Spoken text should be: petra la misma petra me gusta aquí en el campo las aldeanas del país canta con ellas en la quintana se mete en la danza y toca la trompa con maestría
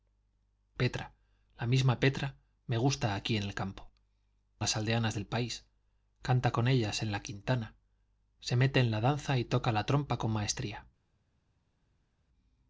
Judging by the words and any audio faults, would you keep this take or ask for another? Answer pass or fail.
pass